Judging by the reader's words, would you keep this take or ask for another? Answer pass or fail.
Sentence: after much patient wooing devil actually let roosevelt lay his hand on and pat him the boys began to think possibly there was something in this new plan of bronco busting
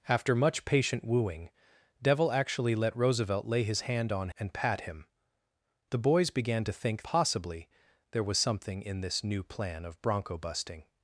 pass